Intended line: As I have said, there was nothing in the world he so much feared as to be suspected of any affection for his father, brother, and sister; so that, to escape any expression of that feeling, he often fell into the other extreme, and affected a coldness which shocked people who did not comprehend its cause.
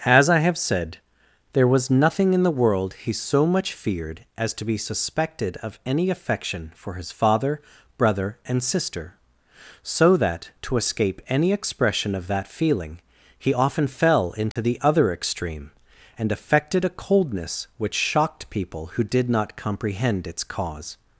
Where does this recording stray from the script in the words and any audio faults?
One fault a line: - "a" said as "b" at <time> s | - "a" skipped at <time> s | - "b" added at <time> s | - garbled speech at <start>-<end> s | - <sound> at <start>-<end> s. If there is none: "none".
- dropout at 14.5-14.6 s